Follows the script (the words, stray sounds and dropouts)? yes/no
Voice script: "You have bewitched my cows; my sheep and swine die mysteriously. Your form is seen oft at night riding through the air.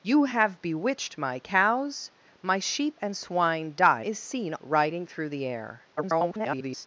no